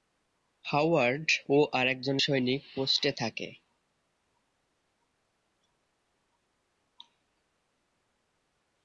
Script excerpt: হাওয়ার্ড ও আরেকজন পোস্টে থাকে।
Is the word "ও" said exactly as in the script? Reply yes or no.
yes